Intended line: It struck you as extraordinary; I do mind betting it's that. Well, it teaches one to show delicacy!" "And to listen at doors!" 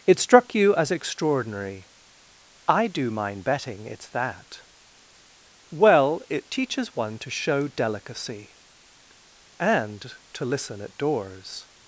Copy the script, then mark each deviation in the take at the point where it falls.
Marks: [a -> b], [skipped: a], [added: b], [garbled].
It struck you as extraordinary; I do mind betting it's that. Well, it teaches one to show delicacy!" "And to listen at doors!"